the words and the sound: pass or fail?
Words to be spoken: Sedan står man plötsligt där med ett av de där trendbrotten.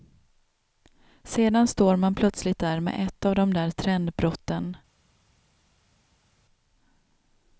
pass